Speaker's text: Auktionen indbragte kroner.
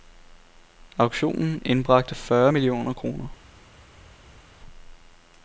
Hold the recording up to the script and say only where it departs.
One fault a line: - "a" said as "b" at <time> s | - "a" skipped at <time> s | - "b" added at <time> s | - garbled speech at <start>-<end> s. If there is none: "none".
- "fyrre millioner" added at 2.1 s